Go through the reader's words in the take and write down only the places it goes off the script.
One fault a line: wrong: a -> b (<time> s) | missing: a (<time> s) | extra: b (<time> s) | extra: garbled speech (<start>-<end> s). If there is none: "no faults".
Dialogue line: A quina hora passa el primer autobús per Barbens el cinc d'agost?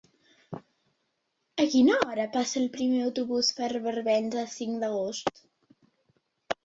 no faults